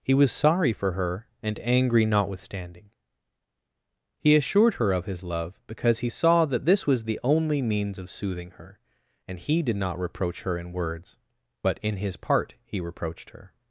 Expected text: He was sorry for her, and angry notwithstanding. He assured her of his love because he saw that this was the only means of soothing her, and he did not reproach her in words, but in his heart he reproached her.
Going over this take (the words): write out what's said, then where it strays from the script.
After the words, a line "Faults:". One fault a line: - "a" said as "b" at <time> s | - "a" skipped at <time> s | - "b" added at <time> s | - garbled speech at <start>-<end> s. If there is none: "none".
He was sorry for her, and angry notwithstanding. He assured her of his love because he saw that this was the only means of soothing her, and he did not reproach her in words, but in his part he reproached her.
Faults:
- "heart" said as "part" at 12.2 s